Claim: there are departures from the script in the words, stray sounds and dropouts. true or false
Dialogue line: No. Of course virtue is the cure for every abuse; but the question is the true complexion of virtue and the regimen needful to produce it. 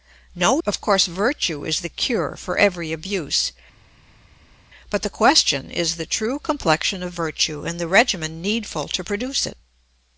false